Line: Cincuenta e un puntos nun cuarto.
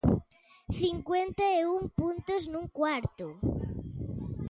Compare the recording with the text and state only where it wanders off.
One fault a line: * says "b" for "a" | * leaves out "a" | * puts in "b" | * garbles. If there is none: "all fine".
all fine